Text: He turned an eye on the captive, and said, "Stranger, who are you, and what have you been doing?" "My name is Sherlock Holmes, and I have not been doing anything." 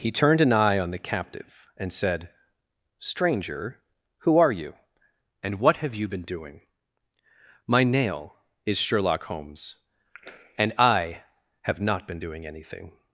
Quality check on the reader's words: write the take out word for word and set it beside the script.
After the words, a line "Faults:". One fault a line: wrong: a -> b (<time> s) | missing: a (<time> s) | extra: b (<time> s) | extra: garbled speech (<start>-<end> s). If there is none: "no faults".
He turned an eye on the captive, and said, "Stranger, who are you, and what have you been doing?" "My nail is Sherlock Holmes, and I have not been doing anything."
Faults:
wrong: name -> nail (7.8 s)